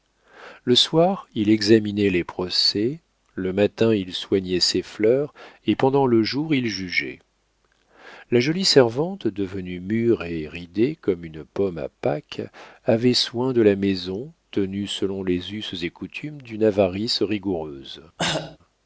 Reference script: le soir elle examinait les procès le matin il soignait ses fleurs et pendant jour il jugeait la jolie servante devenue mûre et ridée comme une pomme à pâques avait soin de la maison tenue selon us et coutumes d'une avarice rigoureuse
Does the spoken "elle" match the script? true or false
false